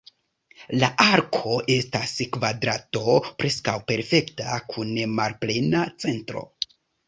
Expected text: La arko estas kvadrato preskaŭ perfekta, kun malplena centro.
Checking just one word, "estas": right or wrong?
right